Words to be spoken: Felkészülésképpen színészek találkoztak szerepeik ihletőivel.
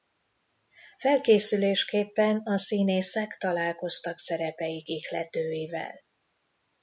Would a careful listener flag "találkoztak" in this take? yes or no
no